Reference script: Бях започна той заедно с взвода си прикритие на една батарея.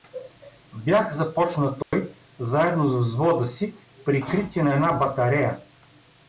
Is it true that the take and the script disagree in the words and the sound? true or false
true